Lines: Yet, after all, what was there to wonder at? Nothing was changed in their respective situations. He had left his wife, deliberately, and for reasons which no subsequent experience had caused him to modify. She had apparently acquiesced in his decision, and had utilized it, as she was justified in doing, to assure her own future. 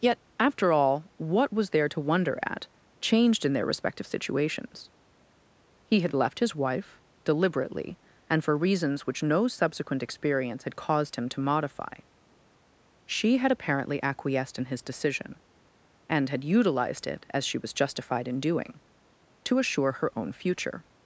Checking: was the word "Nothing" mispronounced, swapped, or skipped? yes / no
yes